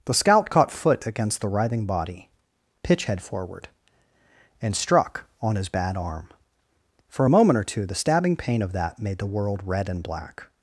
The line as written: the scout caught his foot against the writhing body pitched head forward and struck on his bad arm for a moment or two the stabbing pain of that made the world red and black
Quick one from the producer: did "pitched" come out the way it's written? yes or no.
no